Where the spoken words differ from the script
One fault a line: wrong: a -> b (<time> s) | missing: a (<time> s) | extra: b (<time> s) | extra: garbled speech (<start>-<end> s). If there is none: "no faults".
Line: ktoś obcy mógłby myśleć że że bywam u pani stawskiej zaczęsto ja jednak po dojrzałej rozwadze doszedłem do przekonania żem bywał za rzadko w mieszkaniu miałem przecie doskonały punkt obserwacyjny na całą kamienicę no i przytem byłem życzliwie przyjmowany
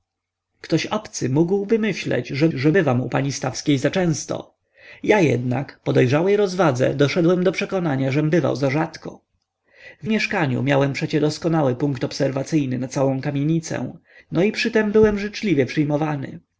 no faults